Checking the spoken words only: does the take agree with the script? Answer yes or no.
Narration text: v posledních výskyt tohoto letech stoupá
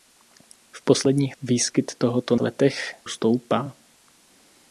yes